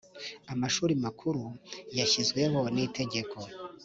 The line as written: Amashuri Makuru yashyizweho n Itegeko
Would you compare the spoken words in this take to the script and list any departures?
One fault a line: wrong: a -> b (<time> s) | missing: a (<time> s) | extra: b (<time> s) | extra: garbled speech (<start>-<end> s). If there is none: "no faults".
no faults